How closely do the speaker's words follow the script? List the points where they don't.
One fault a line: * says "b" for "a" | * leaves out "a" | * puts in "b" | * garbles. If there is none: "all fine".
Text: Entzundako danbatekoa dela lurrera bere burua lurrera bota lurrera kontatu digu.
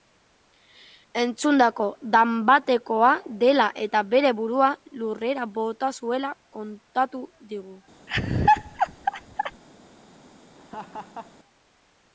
* says "eta" for "lurrera"
* says "zuela" for "lurrera"